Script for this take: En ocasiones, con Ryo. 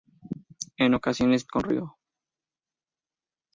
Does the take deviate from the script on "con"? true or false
false